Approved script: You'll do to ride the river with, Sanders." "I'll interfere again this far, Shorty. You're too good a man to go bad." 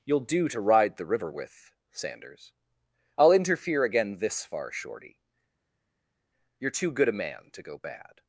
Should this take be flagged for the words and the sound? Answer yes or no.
no